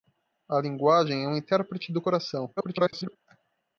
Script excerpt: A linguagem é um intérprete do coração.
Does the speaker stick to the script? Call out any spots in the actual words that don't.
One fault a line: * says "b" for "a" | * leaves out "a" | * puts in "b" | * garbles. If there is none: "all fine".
* garbles